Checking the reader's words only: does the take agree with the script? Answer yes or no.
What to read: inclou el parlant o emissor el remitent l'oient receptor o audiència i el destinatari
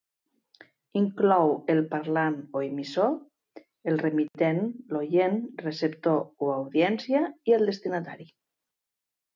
yes